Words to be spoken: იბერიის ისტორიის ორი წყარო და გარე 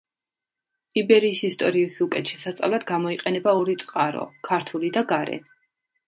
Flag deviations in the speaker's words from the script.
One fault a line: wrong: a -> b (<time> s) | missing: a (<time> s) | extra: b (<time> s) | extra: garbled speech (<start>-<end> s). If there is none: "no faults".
extra: უკეთ შესასწავლად გამოიყენება (2.0 s)
extra: ქართული (4.5 s)